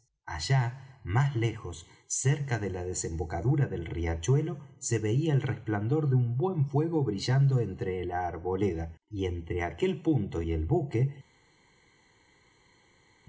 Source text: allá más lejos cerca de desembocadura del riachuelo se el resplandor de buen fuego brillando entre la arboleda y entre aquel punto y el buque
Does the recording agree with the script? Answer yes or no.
no